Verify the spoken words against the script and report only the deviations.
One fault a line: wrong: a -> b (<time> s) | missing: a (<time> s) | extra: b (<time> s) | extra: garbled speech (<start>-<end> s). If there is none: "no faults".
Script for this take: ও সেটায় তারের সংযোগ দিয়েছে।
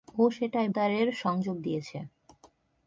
no faults